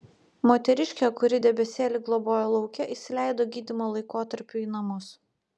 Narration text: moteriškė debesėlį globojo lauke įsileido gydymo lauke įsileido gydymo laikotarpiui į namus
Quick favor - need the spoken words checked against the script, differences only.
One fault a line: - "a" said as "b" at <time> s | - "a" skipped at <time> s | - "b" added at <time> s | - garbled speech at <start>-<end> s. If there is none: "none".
- "kuri" added at 1.2 s
- "lauke įsileido gydymo" skipped at 3.9 s